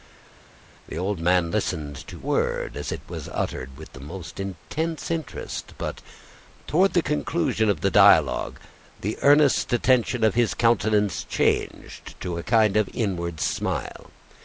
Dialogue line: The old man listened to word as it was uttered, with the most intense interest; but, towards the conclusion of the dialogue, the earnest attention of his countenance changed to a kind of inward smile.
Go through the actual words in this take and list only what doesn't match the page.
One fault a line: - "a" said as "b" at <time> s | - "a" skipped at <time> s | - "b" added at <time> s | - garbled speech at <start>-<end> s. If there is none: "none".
none